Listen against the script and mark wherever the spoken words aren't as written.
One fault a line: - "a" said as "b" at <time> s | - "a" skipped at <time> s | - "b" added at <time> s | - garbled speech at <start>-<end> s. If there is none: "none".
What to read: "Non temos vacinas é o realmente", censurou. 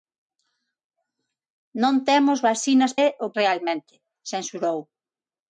none